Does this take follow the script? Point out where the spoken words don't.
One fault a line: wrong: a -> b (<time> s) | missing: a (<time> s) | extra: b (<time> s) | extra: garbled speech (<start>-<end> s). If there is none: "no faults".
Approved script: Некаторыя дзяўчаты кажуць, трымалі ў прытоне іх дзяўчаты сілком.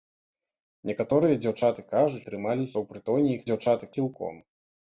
no faults